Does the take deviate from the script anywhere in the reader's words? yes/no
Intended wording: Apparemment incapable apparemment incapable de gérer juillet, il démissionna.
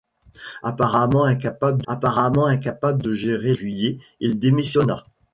no